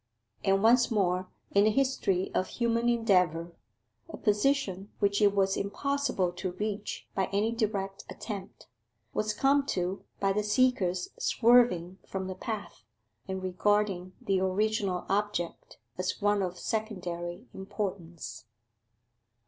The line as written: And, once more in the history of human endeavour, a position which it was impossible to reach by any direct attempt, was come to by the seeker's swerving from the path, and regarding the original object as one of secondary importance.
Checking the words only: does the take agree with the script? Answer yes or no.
yes